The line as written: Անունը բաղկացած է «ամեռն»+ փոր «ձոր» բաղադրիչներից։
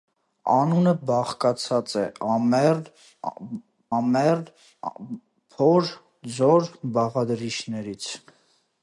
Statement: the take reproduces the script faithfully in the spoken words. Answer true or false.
false